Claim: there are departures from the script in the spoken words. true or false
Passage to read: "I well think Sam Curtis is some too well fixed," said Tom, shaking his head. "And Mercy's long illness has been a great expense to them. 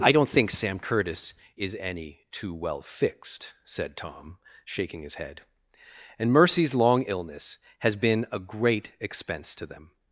true